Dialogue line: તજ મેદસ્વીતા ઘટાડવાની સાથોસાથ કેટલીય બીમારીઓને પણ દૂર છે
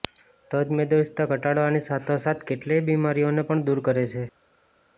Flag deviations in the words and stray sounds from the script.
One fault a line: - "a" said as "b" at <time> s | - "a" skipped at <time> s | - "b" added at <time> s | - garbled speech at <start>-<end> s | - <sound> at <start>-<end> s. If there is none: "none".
- "કરે" added at 3.8 s